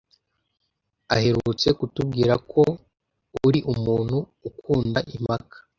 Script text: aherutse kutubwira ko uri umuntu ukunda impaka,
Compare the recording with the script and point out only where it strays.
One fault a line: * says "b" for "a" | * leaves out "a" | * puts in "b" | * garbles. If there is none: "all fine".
all fine